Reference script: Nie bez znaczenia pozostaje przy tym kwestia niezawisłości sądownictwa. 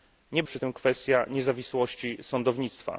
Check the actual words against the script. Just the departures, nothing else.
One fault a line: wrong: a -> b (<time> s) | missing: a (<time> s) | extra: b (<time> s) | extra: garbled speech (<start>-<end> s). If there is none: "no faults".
missing: bez znaczenia pozostaje (0.4 s)